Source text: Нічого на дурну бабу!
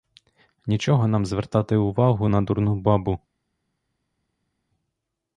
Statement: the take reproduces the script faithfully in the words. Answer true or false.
false